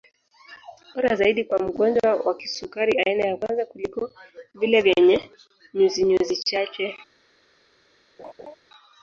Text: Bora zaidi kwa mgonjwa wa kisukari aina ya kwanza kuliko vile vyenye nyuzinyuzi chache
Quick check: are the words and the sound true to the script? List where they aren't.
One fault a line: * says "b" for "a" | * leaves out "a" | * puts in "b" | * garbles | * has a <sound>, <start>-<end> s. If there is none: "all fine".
* has a laugh, 8.2-8.5 s